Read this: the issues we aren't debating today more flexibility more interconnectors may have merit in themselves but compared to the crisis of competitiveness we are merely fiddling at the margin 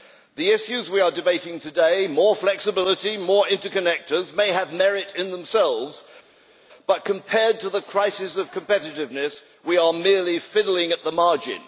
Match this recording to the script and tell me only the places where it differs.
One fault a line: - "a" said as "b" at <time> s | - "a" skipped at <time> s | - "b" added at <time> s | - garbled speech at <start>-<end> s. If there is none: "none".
- "aren't" said as "are" at 1.0 s